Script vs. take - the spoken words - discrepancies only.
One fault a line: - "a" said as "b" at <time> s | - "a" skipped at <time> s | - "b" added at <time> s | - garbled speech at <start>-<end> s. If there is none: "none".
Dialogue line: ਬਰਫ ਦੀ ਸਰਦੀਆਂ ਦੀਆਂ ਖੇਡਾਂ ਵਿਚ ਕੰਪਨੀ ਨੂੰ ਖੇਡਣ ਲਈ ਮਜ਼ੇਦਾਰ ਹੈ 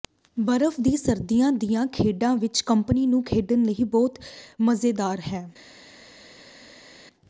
- "ਬਹੁਤ" added at 3.9 s